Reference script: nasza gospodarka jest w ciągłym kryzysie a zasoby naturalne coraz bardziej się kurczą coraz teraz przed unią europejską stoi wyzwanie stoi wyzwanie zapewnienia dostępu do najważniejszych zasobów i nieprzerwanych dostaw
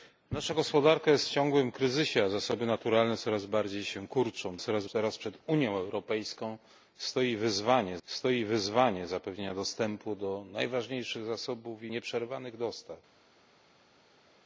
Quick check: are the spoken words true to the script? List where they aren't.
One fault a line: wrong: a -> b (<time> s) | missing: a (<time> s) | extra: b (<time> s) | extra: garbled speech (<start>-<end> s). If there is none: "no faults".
no faults